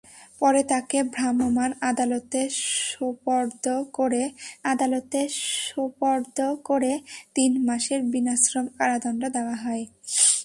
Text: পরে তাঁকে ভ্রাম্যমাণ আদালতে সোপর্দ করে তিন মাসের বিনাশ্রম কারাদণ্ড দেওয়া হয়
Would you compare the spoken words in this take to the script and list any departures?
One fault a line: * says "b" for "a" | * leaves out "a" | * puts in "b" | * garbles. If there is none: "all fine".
* puts in "আদালতে সোপর্দ করে"